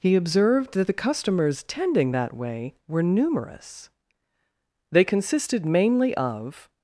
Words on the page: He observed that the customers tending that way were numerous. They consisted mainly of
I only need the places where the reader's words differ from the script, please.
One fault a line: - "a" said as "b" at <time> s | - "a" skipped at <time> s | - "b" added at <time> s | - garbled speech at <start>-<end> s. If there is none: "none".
none